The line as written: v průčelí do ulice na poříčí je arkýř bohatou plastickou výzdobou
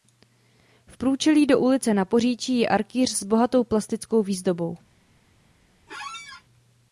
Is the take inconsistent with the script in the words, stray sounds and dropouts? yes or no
yes